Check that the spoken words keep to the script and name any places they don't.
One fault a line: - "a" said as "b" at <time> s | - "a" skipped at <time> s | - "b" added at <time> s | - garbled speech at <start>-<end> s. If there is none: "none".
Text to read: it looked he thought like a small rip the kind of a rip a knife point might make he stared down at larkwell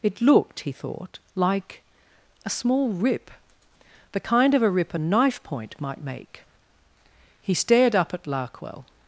- "down" said as "up" at 8.0 s